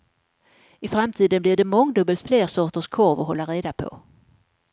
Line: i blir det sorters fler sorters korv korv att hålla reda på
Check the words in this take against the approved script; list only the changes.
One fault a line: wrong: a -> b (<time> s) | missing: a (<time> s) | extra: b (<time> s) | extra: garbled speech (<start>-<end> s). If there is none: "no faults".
extra: framtiden (0.9 s)
wrong: sorters -> mångdubbelt (1.6 s)
missing: korv (3.2 s)